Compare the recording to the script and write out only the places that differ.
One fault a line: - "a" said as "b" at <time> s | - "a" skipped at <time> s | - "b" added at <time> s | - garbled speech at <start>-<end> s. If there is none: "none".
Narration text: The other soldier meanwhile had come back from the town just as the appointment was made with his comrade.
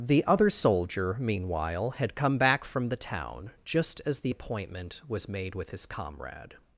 none